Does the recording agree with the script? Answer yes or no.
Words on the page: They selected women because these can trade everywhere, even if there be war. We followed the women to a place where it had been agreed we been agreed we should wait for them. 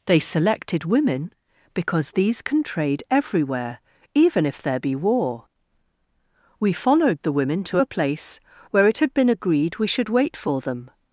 no